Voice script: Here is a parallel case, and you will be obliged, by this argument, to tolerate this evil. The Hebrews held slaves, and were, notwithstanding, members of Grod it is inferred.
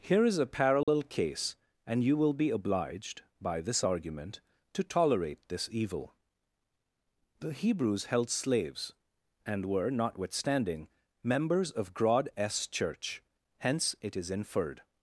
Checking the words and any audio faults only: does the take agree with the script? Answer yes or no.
no